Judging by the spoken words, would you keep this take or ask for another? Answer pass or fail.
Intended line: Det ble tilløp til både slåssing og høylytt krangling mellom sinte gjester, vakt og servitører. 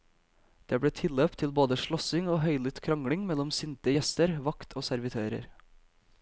pass